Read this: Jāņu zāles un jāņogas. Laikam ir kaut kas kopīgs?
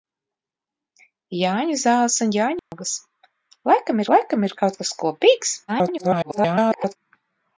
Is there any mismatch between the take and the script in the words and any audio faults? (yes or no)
yes